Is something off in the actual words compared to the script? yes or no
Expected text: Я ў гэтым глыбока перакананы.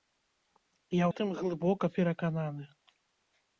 yes